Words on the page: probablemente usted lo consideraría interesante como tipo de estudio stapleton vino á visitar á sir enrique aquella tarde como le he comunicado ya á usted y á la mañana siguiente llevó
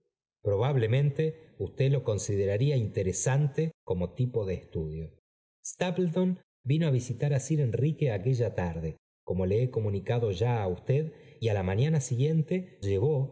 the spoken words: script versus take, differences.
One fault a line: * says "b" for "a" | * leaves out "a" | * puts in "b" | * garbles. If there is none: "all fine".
all fine